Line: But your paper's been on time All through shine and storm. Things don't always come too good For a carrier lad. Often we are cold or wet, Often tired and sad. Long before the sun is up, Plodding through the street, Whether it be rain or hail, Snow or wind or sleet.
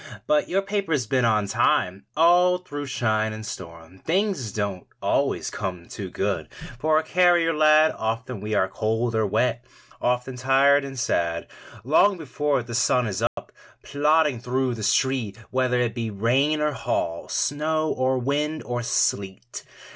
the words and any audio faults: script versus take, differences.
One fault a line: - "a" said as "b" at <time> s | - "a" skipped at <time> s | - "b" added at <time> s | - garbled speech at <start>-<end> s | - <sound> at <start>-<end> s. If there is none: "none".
- dropout at 13.3-13.4 s